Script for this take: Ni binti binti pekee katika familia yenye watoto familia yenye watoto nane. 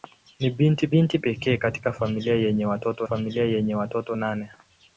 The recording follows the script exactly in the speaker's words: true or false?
true